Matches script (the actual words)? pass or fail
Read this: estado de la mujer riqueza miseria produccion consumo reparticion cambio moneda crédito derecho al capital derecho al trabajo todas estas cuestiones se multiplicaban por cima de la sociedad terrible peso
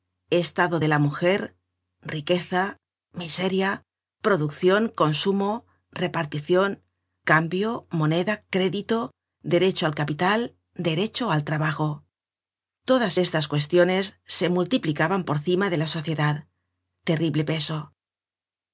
pass